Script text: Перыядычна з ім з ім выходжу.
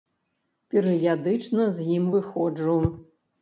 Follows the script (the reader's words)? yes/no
no